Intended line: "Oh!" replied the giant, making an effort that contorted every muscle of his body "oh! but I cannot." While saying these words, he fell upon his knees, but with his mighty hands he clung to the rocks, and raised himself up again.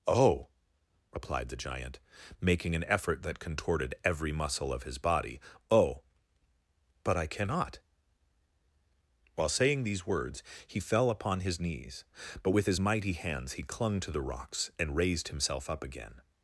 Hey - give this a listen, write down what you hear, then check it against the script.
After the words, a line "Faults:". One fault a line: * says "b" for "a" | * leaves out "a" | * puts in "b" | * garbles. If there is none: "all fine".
"Oh!" replied the giant, making an effort that contorted every muscle of his body "oh! but I cannot." While saying these words, he fell upon his knees, but with his mighty hands he clung to the rocks, and raised himself up again.
Faults:
all fine